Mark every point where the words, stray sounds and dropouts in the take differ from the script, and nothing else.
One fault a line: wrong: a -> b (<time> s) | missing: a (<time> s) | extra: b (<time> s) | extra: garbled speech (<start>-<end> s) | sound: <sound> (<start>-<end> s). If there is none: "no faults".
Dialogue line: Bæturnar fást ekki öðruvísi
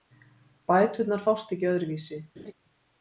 sound: laugh (2.4-2.5 s)